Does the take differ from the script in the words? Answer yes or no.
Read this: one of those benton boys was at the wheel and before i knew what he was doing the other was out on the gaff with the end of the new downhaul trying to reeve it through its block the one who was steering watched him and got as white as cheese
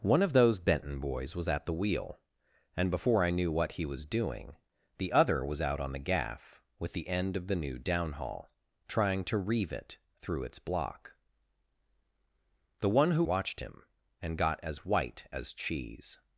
yes